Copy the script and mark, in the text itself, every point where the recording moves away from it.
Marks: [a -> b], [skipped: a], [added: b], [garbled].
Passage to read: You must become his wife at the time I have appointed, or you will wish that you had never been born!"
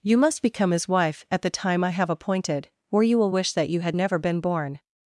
You must become his wife at the time I have appointed, or you will wish that you had never been born!"